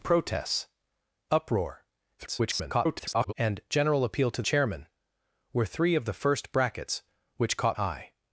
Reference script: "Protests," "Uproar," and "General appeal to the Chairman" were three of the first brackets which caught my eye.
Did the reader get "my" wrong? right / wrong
wrong